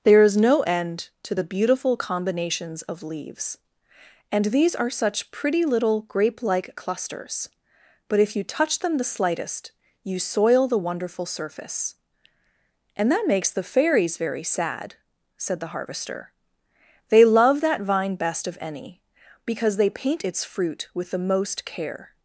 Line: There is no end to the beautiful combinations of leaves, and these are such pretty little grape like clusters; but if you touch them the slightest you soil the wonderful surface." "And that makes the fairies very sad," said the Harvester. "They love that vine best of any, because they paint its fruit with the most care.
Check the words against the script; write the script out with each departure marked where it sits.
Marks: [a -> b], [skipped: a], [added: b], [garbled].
There is no end to the beautiful combinations of leaves, and these are such pretty little grape like clusters; but if you touch them the slightest you soil the wonderful surface." "And that makes the fairies very sad," said the Harvester. "They love that vine best of any, because they paint its fruit with the most care.